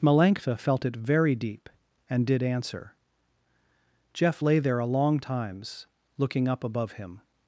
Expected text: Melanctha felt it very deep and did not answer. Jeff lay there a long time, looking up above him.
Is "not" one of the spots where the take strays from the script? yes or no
yes